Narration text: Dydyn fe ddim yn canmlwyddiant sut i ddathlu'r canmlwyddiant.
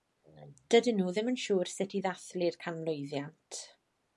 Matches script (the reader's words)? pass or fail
fail